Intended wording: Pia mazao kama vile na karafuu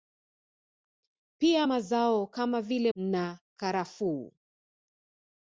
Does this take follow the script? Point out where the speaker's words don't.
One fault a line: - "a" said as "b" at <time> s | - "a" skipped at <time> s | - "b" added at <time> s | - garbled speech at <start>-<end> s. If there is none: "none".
none